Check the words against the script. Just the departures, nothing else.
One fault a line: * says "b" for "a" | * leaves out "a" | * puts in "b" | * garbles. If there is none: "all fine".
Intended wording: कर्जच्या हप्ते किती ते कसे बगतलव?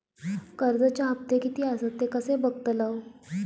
* puts in "आसत"